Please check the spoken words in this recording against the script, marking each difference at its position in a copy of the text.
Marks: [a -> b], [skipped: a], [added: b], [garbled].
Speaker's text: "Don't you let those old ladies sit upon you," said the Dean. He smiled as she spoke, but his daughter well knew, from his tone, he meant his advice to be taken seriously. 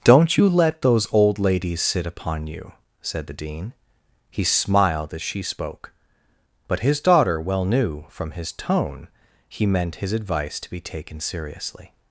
"Don't you let those old ladies sit upon you," said the Dean. He smiled as she spoke, but his daughter well knew, from his tone, he meant his advice to be taken seriously.